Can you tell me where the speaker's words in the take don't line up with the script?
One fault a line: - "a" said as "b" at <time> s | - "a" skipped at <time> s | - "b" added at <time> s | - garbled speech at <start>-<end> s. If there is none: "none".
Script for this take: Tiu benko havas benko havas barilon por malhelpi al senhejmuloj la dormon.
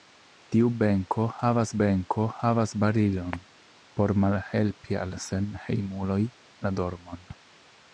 none